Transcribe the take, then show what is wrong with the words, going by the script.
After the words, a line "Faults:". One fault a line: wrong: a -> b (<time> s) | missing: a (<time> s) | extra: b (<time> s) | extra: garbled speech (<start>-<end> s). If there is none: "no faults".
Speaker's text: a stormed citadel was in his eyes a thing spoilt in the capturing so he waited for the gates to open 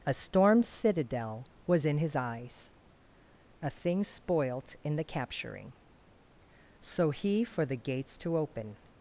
a stormed citadel was in his eyes a thing spoilt in the capturing so he for the gates to open
Faults:
missing: waited (7.4 s)